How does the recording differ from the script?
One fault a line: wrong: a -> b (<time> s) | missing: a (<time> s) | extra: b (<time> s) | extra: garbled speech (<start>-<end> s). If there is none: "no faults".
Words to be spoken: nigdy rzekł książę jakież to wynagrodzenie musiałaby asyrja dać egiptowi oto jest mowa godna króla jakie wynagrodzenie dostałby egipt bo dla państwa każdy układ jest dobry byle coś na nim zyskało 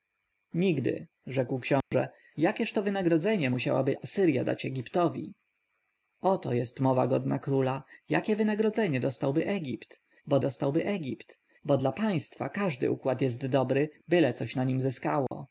extra: dostałby egipt bo (10.4 s)